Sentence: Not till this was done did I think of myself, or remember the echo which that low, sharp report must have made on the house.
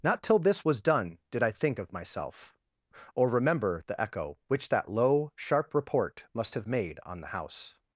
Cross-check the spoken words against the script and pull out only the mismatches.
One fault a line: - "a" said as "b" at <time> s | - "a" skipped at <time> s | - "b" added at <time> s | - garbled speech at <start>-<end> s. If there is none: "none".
none